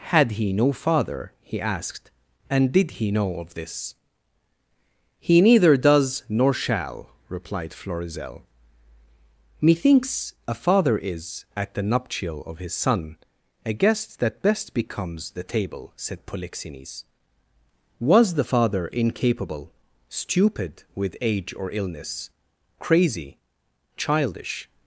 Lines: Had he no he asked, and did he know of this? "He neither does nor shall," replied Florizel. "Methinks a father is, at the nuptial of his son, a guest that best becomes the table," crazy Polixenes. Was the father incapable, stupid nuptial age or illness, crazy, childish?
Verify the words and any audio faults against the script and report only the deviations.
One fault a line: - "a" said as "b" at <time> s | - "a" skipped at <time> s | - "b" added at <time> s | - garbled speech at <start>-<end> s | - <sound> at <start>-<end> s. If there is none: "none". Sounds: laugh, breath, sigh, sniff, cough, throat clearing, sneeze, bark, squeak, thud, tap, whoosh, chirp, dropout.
- "father" added at 0.7 s
- "crazy" said as "said" at 15.9 s
- "nuptial" said as "with" at 20.9 s